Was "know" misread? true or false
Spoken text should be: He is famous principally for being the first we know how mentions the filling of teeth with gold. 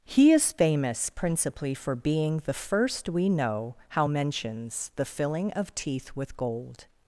false